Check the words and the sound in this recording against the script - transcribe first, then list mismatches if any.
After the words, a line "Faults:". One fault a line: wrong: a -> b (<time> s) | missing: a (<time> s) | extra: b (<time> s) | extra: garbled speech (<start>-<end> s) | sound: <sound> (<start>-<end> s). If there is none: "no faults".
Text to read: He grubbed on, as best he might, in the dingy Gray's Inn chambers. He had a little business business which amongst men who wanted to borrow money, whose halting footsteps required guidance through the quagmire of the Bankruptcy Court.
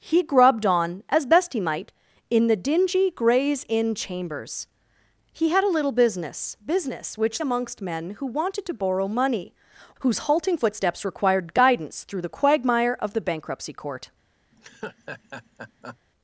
He grubbed on, as best he might, in the dingy Gray's Inn chambers. He had a little business business which amongst men who wanted to borrow money, whose halting footsteps required guidance through the quagmire of the Bankruptcy Court.
Faults:
sound: laugh (14.5-16.0 s)